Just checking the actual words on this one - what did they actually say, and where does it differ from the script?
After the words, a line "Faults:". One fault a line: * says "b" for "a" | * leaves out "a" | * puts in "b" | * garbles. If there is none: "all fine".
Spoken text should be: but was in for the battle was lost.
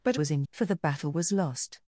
but was in for the battle was lost.
Faults:
all fine